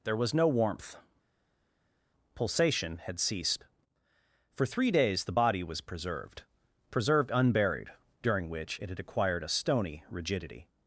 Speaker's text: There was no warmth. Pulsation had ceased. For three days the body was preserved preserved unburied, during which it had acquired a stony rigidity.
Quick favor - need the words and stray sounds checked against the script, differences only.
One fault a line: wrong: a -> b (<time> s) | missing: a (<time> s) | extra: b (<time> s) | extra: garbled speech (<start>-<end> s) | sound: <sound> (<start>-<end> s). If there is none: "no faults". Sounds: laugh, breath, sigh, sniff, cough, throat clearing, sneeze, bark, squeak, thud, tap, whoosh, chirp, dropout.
no faults